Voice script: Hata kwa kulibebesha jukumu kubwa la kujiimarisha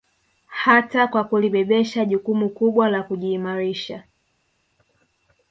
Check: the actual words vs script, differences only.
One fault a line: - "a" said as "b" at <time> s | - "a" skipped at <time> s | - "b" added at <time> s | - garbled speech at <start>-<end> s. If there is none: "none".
none